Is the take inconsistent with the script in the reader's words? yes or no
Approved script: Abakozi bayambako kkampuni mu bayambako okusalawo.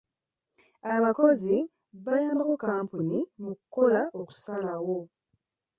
yes